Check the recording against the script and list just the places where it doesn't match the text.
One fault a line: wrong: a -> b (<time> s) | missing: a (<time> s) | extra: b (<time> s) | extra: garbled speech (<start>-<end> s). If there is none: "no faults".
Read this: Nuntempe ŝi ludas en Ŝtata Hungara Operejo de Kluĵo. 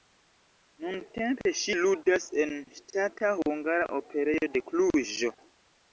no faults